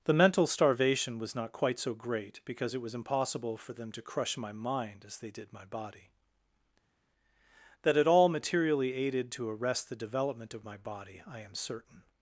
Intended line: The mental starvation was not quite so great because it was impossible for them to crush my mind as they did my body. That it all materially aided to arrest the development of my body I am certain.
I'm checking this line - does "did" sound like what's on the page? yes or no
yes